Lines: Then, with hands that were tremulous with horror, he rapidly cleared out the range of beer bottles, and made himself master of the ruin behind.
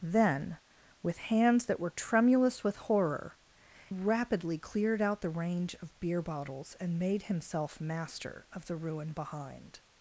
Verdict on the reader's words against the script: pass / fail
fail